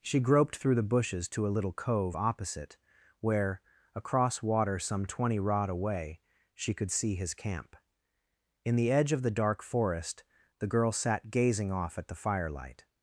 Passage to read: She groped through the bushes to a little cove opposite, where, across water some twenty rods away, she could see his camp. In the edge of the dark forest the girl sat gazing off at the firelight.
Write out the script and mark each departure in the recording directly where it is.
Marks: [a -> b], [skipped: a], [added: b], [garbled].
She groped through the bushes to a little cove opposite, where, across water some twenty [rods -> rod] away, she could see his camp. In the edge of the dark forest the girl sat gazing off at the firelight.